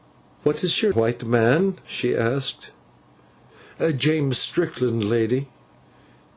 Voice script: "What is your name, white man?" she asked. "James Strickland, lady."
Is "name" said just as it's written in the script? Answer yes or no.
no